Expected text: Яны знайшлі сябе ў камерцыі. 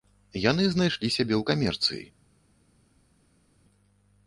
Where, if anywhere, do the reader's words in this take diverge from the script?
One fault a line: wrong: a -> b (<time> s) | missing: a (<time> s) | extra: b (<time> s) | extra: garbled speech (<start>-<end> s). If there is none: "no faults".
no faults